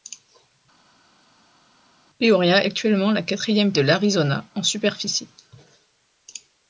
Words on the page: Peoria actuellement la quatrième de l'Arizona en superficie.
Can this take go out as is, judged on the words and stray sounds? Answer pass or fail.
pass